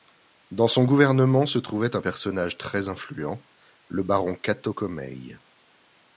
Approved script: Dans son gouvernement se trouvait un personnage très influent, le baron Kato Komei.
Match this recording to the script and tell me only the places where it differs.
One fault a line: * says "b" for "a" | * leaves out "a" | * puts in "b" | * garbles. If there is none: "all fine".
all fine